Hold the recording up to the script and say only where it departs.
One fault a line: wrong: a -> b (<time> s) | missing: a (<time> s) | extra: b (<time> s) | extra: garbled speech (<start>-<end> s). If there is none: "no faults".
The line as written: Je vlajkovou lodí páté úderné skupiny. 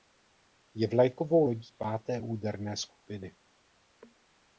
no faults